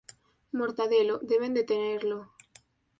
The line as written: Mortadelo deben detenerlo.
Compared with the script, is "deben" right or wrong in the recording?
right